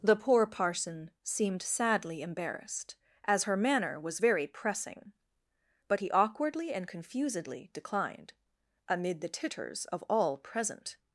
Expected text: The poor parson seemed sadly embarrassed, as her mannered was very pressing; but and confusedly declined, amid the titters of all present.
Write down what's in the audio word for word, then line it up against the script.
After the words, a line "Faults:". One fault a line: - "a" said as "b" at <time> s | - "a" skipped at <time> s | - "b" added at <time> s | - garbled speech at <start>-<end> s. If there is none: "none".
The poor parson seemed sadly embarrassed, as her manner was very pressing; but he awkwardly and confusedly declined, amid the titters of all present.
Faults:
- "mannered" said as "manner" at 3.6 s
- "he awkwardly" added at 6.0 s